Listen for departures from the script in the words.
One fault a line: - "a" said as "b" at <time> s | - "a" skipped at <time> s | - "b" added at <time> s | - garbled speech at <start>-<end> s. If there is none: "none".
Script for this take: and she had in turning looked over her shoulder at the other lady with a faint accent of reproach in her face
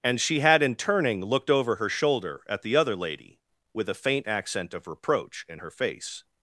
none